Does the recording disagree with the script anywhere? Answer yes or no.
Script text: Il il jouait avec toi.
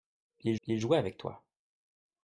no